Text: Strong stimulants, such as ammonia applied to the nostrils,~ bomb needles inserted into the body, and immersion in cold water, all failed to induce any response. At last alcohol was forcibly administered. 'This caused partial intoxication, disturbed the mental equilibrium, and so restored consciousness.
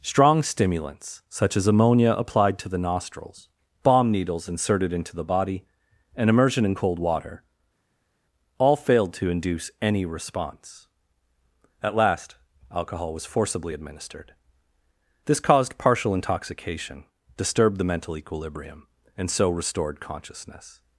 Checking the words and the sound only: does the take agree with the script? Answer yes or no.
yes